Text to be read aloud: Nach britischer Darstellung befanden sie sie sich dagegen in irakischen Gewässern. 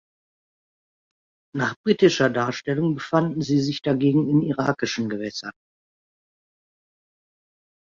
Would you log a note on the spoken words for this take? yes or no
yes